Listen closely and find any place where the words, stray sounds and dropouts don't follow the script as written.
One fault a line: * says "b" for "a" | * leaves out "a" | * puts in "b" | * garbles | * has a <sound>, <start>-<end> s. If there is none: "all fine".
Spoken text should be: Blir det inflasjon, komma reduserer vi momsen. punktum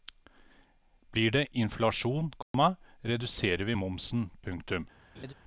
* has a dropout, 2.4-2.5 s
* has a laugh, 5.1-5.3 s